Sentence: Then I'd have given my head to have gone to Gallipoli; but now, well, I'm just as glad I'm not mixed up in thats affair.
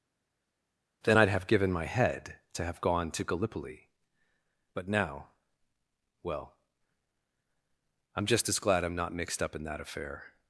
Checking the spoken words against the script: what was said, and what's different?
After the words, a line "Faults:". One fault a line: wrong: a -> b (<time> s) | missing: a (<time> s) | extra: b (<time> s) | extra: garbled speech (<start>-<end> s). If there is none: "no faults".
Then I'd have given my head to have gone to Gallipoli; but now, well, I'm just as glad I'm not mixed up in that affair.
Faults:
wrong: thats -> that (9.6 s)